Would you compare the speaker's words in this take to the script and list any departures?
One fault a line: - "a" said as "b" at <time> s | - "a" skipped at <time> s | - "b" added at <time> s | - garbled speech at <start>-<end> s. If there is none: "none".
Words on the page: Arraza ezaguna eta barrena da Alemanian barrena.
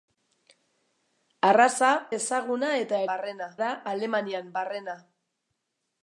none